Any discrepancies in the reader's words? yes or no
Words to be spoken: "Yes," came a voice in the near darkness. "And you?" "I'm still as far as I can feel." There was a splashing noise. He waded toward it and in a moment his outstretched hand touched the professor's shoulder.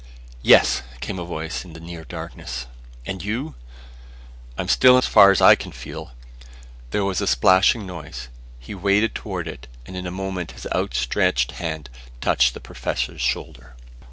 no